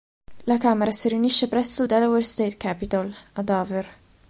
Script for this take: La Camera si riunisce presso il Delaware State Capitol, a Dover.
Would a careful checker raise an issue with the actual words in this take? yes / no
no